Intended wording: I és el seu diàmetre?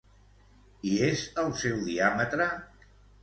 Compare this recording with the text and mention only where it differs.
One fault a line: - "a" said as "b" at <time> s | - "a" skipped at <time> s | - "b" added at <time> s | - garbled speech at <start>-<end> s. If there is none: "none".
none